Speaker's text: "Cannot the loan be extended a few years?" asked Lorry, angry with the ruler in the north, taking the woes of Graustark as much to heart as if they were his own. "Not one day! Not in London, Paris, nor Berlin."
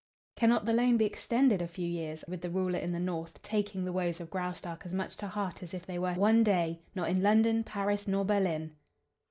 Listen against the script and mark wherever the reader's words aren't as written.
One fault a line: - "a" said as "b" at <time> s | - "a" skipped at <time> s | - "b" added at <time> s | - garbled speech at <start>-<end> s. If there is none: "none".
- "asked Lorry angry" skipped at 2.2 s
- "his own Not" skipped at 6.1 s